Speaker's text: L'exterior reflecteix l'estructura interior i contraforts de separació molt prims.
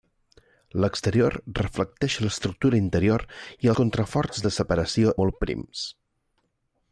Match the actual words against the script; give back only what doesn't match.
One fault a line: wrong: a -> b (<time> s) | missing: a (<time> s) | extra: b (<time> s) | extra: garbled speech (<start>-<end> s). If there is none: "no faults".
no faults